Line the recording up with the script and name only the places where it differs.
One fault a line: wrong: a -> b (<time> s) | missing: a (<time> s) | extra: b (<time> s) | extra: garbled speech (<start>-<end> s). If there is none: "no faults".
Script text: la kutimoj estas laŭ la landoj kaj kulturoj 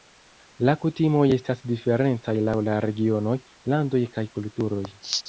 extra: diferencaj (1.7 s)
extra: regionoj (2.9 s)